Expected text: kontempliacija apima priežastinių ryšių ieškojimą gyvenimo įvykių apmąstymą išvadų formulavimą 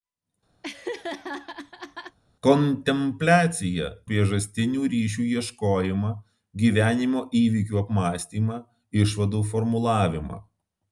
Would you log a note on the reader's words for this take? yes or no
yes